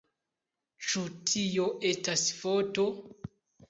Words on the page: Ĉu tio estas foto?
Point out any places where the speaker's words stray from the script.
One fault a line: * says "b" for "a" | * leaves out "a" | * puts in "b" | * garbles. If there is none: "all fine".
all fine